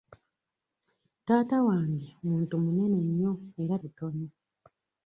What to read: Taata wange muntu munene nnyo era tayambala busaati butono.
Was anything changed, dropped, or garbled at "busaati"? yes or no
yes